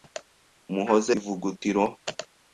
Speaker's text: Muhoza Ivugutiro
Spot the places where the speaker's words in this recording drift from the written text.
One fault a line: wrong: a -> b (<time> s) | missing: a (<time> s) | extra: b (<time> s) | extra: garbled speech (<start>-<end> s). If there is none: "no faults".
no faults